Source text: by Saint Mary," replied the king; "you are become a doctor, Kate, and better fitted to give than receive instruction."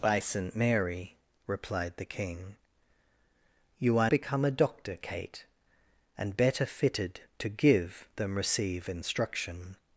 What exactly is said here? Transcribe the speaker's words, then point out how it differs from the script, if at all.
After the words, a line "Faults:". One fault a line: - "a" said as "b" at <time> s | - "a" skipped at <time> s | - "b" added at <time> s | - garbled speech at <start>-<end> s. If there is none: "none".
by Saint Mary," replied the king; "you are become a doctor, Kate, and better fitted to give than receive instruction."
Faults:
none